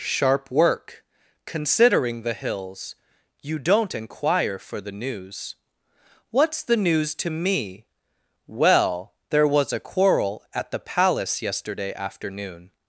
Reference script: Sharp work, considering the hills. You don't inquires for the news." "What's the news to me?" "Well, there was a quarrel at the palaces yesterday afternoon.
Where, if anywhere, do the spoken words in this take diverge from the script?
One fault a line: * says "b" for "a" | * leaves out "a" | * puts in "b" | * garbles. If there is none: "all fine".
* says "inquire" for "inquires"
* says "palace" for "palaces"